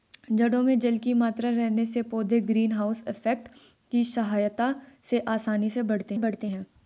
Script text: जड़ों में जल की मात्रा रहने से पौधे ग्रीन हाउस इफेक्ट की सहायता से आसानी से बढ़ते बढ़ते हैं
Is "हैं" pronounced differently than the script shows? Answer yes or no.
no